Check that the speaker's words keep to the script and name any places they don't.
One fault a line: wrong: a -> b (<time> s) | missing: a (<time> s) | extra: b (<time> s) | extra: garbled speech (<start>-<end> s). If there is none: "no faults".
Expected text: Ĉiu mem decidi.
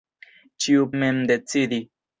no faults